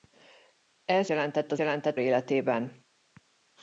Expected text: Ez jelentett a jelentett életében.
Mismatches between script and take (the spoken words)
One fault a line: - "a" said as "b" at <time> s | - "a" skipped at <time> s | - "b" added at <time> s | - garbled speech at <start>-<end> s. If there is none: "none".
none